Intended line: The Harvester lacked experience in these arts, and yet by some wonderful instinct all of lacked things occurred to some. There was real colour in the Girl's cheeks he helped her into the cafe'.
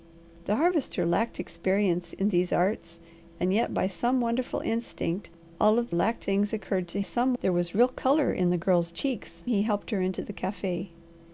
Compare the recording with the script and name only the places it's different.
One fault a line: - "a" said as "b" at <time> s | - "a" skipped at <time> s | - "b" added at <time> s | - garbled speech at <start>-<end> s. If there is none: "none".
none